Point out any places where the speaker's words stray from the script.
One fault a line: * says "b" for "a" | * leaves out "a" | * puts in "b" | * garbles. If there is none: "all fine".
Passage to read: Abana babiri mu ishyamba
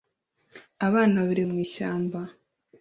all fine